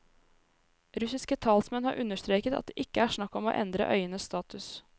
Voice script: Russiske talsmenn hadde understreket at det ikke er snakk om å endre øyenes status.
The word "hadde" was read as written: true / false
false